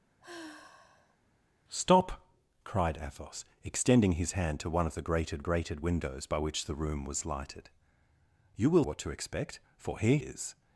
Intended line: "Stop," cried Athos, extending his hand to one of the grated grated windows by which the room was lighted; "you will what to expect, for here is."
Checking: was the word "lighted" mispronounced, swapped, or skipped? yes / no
no